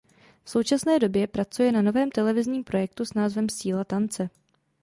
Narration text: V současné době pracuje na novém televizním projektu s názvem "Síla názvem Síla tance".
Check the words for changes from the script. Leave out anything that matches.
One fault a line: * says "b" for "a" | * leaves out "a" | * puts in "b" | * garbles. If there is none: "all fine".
* leaves out "názvem Síla"